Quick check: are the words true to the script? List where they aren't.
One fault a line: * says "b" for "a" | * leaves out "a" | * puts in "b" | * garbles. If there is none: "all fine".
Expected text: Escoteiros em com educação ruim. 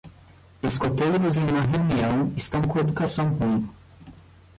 * puts in "uma reunião estão"